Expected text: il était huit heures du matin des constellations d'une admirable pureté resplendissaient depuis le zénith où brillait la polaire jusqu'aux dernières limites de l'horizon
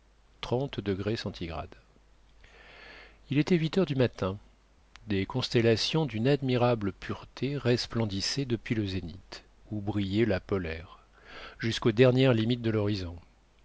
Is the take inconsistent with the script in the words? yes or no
no